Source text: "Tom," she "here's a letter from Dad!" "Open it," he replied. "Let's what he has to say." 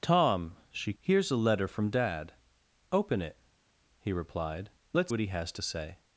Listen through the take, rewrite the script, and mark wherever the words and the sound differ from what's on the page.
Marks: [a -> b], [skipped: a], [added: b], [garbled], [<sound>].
"Tom," she "here's a letter from Dad!" "Open it," he replied. "Let's what he has to say."